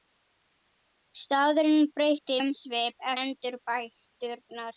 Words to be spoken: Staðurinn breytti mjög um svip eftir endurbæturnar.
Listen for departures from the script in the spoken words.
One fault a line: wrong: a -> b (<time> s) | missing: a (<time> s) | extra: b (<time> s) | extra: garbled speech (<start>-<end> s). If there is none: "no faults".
missing: mjög (2.4 s)
missing: eftir (3.1 s)